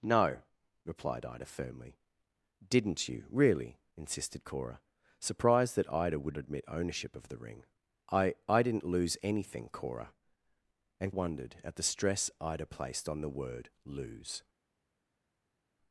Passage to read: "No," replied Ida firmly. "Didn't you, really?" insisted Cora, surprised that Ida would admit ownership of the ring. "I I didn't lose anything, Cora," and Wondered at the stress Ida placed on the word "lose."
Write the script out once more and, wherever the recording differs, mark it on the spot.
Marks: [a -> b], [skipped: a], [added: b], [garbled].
"No," replied Ida firmly. "Didn't you, really?" insisted Cora, surprised that Ida would admit ownership of the ring. "I I didn't lose anything, Cora," and Wondered at the stress Ida placed on the word "lose."